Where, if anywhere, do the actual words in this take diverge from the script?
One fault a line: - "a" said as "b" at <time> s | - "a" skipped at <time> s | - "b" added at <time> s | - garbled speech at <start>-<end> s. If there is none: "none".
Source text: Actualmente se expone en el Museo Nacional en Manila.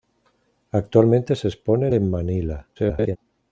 - "el Museo Nacional" skipped at 1.9 s
- garbled speech at 2.8-3.2 s